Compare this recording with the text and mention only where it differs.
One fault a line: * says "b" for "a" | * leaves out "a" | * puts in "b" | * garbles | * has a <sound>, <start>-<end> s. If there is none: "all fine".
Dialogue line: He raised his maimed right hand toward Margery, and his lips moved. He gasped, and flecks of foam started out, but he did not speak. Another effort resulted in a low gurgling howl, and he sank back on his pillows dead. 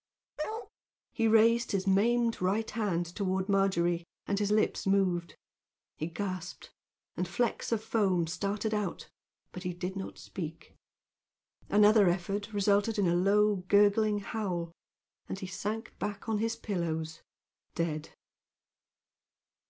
* has a bark, 0.4-0.7 s